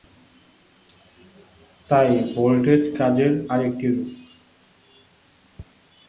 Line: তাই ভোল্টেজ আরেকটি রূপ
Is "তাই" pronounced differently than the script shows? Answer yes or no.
no